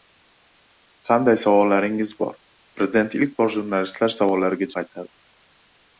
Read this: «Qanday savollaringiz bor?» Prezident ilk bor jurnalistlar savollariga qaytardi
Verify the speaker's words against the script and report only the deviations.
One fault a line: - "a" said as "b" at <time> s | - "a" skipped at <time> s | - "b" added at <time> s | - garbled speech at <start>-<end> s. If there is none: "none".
none